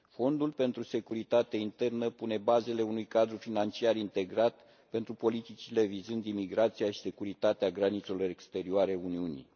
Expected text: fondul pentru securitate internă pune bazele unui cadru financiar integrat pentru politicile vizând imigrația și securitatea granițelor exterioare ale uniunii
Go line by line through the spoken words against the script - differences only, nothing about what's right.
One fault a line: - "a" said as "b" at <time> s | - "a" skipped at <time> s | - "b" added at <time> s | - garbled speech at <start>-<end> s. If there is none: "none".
none